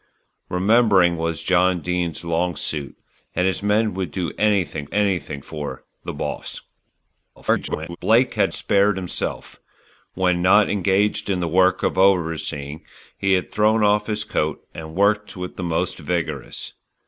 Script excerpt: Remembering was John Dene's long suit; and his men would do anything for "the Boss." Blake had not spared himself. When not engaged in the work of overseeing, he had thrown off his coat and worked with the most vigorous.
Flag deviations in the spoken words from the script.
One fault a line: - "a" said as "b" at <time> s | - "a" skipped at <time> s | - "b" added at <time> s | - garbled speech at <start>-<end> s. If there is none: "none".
- "anything" added at 4.9 s
- garbled speech at 7.4-8.0 s
- "not" skipped at 8.5 s